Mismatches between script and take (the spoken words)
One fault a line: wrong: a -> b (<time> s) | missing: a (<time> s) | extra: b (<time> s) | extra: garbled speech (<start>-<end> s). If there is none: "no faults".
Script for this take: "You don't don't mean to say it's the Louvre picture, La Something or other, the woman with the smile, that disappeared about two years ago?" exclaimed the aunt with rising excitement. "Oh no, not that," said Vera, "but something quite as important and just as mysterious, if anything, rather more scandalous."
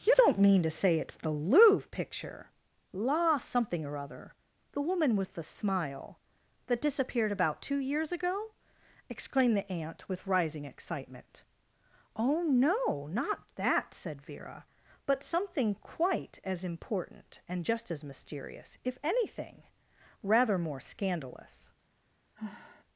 missing: don't (0.4 s)